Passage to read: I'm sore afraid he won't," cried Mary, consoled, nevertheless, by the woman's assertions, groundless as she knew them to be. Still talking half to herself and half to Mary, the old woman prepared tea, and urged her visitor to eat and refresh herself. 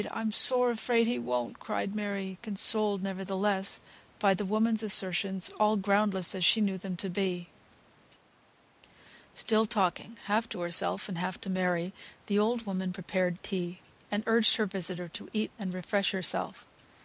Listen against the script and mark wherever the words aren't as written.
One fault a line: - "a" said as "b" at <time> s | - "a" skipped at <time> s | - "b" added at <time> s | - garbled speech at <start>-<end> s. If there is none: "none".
- "all" added at 5.6 s